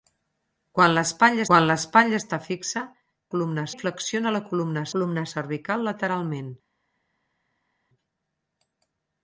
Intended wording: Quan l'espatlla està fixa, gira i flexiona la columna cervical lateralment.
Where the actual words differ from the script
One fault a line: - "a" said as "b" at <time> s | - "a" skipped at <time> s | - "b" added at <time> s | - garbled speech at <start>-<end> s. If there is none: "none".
- "quan l'espatlla" added at 1.5 s
- "gira" said as "columna" at 3.3 s
- "columna" added at 4.9 s